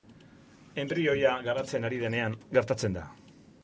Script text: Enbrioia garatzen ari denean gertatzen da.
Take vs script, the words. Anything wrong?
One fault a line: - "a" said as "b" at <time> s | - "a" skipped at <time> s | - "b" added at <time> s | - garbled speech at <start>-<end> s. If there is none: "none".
none